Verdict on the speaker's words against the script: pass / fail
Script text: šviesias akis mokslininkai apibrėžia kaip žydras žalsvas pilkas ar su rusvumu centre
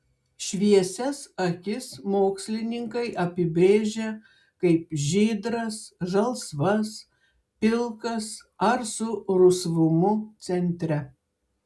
pass